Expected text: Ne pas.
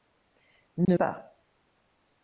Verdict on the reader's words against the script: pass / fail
pass